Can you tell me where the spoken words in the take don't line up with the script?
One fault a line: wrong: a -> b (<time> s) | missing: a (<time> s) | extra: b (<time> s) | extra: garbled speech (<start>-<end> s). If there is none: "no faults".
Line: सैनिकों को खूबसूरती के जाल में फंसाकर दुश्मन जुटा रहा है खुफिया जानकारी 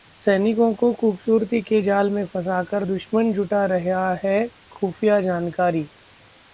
no faults